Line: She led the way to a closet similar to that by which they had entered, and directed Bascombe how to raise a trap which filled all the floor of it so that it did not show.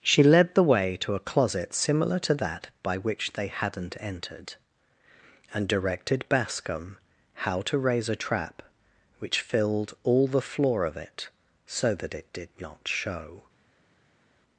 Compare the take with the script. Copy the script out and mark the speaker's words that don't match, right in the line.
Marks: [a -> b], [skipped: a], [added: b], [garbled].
She led the way to a closet similar to that by which they [had -> hadn't] entered, and directed Bascombe how to raise a trap which filled all the floor of it so that it did not show.